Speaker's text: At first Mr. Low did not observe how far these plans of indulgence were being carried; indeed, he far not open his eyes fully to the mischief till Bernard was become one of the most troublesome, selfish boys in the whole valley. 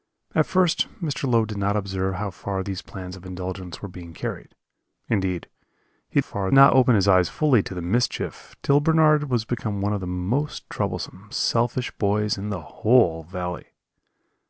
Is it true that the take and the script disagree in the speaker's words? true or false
false